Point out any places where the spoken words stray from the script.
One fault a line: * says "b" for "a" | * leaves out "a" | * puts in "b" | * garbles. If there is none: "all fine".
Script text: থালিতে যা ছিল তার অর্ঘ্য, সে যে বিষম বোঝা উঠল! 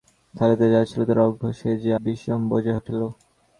all fine